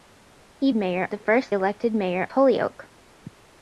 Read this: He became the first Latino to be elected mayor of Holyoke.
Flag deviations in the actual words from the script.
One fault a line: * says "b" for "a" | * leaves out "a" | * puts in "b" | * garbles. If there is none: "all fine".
* says "mayor" for "became"
* leaves out "Latino to be"
* leaves out "of"